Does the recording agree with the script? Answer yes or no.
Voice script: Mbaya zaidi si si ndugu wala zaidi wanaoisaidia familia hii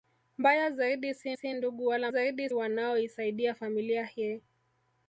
yes